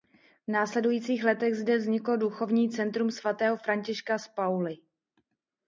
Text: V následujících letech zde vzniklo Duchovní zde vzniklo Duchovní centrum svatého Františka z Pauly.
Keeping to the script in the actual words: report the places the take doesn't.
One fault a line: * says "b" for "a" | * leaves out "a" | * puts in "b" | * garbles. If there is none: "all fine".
* leaves out "zde vzniklo Duchovní"